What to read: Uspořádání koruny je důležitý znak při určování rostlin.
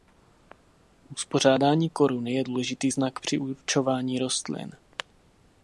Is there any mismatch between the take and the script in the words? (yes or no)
no